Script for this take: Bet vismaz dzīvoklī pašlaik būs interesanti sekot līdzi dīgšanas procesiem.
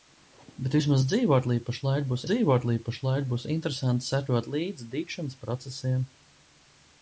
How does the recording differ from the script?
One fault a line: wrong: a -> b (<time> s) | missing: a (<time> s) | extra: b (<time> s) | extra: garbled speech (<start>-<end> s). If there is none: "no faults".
extra: dzīvoklī pašlaik būs (2.3 s)